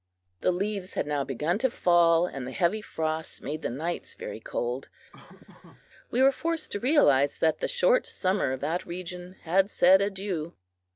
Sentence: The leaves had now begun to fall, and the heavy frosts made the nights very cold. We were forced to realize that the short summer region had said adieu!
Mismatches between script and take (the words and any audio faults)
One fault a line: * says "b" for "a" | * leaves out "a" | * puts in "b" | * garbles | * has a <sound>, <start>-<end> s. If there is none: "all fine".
* has a laugh, 5.1-5.9 s
* puts in "of that"